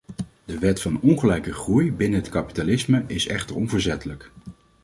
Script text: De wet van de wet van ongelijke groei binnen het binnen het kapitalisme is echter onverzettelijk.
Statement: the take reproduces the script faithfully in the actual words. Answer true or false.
false